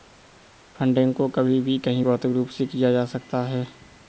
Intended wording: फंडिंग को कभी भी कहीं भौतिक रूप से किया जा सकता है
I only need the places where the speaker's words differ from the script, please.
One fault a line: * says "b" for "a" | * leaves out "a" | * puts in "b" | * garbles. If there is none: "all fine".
all fine